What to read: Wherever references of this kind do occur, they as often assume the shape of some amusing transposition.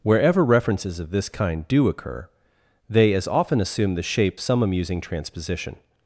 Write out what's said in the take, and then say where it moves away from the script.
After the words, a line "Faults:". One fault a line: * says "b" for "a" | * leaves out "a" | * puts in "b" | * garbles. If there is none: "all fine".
Wherever references of this kind do occur, they as often assume the shape some amusing transposition.
Faults:
* leaves out "of"